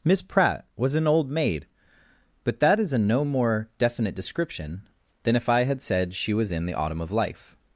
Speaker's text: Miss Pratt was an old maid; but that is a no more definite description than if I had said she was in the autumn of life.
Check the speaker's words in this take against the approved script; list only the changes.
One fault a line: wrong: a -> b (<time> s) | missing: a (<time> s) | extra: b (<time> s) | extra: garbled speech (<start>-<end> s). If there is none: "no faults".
no faults